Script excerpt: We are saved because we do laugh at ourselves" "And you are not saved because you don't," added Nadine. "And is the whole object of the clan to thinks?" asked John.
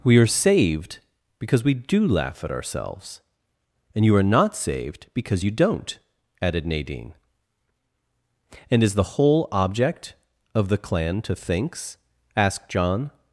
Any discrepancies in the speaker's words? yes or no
no